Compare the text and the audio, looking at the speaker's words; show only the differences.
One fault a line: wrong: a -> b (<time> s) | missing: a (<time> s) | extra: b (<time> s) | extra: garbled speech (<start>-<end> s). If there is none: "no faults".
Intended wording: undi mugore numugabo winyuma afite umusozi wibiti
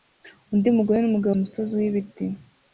missing: winyuma afite (1.4 s)